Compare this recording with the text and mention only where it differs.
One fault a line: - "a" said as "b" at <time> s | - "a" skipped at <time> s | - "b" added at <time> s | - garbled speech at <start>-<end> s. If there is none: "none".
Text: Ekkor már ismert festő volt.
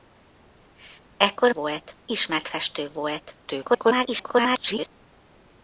- "már" said as "volt" at 1.5 s
- garbled speech at 3.5-4.9 s